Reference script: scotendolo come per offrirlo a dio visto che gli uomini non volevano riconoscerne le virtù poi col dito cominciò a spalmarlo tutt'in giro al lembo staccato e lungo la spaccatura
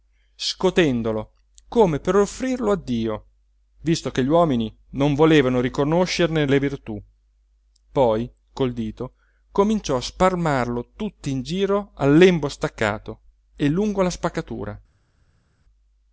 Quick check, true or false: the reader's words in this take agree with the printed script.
true